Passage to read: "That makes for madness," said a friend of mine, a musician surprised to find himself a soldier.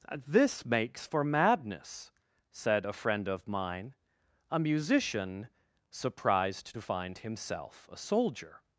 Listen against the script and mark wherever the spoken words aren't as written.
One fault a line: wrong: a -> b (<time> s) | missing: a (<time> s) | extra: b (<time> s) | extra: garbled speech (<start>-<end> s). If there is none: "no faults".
wrong: That -> This (0.2 s)